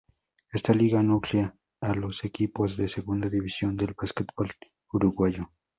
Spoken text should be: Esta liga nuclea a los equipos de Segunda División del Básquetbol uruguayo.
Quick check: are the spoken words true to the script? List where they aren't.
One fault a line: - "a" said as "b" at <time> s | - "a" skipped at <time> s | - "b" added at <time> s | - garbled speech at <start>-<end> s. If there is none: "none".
none